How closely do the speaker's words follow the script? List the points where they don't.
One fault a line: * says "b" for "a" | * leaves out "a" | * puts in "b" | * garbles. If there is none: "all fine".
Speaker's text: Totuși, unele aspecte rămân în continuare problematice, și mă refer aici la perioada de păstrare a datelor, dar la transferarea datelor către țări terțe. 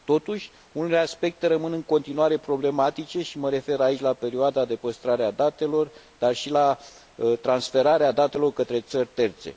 * puts in "și"